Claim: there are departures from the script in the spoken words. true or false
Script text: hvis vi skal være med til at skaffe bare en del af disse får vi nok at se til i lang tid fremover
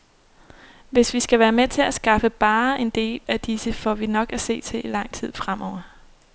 false